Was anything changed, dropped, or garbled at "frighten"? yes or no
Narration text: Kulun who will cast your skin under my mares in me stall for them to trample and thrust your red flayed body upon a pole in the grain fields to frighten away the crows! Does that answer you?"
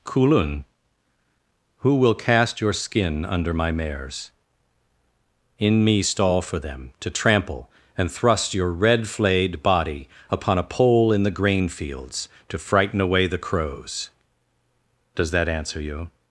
no